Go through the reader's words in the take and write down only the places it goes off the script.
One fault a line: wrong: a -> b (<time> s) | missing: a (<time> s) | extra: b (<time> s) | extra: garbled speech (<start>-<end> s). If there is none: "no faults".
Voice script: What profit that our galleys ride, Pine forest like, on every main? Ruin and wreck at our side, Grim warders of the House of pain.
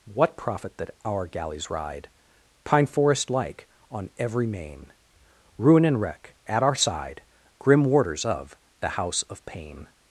no faults